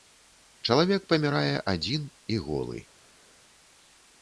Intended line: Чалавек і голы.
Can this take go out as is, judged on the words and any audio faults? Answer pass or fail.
fail